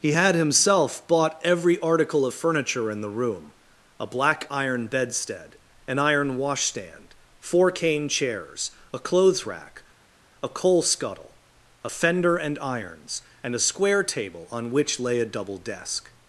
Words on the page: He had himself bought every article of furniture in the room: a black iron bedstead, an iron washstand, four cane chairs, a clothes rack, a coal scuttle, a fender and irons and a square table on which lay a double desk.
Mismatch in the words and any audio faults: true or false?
false